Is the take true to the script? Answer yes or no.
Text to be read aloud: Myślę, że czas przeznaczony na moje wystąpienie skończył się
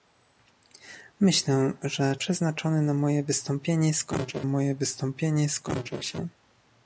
no